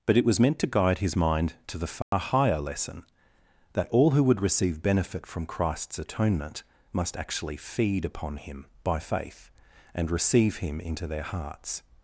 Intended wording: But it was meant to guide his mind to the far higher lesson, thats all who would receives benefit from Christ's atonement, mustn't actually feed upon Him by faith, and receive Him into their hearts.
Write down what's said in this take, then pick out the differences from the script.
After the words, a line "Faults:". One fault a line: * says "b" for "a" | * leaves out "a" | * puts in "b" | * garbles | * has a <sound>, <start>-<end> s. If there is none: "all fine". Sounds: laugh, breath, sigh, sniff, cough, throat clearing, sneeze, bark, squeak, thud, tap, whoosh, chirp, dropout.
But it was meant to guide his mind to the far higher lesson, that all who would receive benefit from Christ's atonement, must actually feed upon Him by faith, and receive Him into their hearts.
Faults:
* has a dropout, 2.0-2.1 s
* says "that" for "thats"
* says "receive" for "receives"
* says "must" for "mustn't"